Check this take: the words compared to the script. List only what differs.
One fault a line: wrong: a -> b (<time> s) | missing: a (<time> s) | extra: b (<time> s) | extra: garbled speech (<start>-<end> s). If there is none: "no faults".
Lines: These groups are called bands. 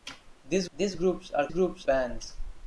extra: these (0.7 s)
wrong: called -> groups (1.5 s)